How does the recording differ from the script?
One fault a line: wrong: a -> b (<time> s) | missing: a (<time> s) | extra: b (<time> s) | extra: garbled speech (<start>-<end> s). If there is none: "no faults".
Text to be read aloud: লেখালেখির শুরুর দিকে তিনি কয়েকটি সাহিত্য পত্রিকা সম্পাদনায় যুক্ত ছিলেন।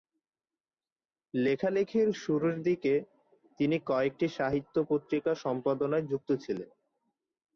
no faults